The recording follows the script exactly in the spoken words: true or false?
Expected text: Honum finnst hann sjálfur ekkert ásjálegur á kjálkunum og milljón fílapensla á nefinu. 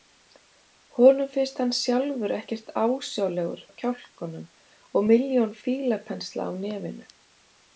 true